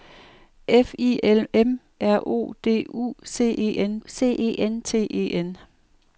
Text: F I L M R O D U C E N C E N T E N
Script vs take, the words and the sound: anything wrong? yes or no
no